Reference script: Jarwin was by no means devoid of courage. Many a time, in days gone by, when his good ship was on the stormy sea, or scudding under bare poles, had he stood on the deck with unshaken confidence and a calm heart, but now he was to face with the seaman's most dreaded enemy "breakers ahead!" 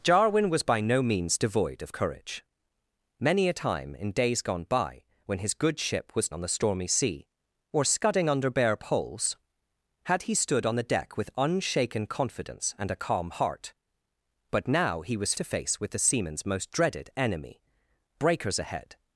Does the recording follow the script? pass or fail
pass